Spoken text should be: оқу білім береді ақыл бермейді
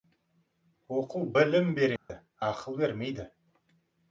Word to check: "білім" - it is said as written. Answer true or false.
true